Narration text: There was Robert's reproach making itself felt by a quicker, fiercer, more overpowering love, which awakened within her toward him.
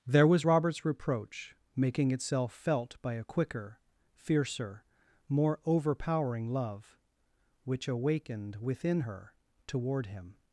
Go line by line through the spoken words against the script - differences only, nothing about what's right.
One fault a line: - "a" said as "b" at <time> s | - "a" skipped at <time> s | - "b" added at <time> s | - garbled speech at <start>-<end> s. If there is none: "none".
none